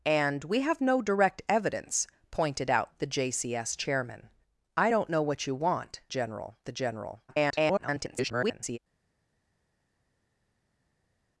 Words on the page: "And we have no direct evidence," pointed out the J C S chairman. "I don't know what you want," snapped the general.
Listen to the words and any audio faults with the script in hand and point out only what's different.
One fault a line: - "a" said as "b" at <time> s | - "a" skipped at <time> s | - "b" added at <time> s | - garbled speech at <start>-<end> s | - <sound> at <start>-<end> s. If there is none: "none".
- "snapped" said as "general" at 6.1 s
- garbled speech at 7.3-8.8 s